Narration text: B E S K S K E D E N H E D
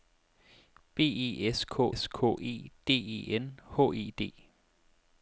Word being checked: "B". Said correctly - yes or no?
yes